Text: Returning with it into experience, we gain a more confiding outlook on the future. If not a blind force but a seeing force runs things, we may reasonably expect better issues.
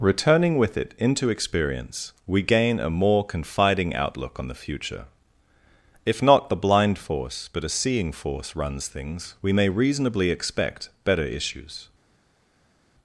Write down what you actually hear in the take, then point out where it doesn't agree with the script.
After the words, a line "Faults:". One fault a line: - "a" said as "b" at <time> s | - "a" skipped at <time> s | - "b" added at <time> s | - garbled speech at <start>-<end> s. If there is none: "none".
Returning with it into experience, we gain a more confiding outlook on the future. If not the blind force but a seeing force runs things, we may reasonably expect better issues.
Faults:
- "a" said as "the" at 6.5 s